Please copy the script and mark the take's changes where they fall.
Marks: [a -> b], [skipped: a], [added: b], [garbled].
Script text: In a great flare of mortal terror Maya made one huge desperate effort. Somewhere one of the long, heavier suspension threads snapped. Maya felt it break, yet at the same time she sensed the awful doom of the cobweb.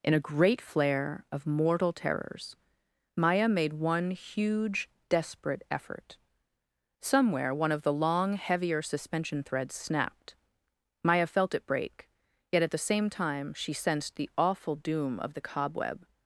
In a great flare of mortal [terror -> terrors] Maya made one huge desperate effort. Somewhere one of the long, heavier suspension threads snapped. Maya felt it break, yet at the same time she sensed the awful doom of the cobweb.